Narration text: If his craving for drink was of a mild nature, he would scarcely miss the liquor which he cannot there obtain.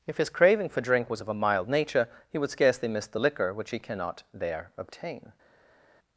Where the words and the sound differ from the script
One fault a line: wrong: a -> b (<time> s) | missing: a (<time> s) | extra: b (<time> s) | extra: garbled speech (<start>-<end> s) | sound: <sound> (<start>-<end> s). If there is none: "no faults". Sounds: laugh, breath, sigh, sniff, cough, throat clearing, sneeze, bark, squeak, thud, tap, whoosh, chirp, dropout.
no faults